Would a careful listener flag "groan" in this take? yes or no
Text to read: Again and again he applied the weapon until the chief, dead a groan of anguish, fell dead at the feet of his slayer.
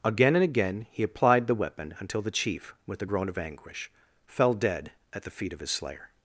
no